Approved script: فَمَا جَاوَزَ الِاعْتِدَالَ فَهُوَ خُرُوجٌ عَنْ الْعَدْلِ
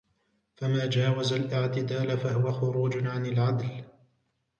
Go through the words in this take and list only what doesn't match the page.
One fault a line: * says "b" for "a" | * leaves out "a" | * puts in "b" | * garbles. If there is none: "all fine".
all fine